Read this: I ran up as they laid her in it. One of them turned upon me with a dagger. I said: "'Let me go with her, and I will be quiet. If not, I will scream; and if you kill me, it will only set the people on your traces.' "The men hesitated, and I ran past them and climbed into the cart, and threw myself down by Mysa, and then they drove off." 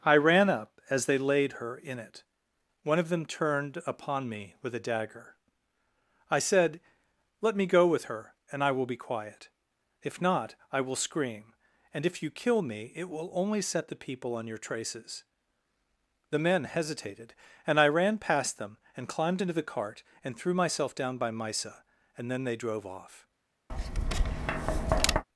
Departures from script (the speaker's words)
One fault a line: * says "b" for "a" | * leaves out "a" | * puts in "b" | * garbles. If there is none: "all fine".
all fine